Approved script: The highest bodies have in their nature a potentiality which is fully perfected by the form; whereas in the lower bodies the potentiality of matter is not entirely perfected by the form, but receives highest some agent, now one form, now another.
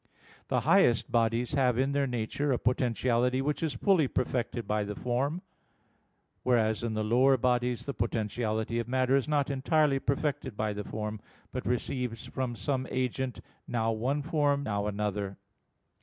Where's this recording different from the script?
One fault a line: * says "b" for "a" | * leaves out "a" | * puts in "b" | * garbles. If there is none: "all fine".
* says "from" for "highest"